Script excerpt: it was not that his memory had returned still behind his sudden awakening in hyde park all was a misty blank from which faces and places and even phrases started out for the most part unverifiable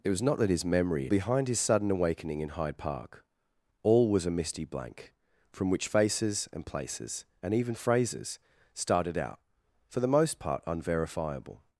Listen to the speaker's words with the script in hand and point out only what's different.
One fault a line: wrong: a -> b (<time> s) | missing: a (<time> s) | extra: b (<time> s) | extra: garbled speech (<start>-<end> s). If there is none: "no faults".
missing: had returned still (1.1 s)